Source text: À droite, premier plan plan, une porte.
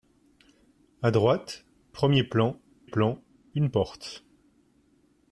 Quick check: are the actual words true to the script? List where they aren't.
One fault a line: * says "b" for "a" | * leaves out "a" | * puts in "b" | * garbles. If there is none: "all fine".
all fine